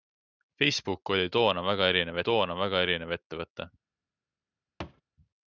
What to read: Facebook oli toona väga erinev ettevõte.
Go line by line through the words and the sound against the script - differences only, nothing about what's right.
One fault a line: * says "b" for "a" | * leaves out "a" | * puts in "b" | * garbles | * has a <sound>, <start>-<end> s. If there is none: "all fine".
* puts in "toona väga erinev"
* has a thud, 4.8-5.0 s